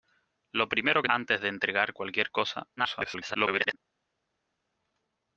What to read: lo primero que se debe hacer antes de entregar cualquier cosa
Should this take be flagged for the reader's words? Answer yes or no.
yes